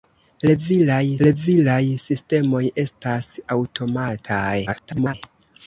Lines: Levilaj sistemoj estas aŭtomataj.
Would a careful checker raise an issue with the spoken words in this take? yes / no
yes